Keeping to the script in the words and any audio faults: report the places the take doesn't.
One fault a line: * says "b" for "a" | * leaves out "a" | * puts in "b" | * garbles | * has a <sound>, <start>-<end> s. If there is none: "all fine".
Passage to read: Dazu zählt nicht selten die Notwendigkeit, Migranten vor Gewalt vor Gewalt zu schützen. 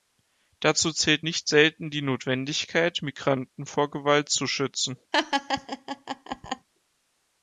* leaves out "vor Gewalt"
* has a laugh, 5.1-6.7 s